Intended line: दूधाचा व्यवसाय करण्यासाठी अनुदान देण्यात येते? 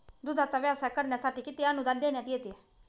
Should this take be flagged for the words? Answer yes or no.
yes